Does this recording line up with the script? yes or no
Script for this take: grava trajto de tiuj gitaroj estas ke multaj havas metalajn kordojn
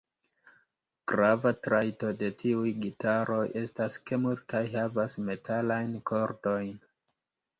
yes